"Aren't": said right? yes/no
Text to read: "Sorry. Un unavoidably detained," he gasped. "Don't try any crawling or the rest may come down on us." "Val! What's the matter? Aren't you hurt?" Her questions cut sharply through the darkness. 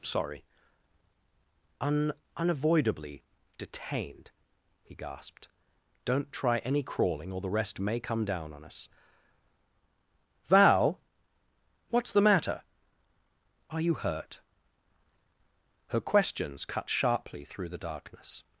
no